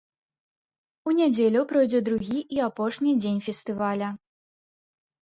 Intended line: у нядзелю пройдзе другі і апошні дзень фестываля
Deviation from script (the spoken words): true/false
false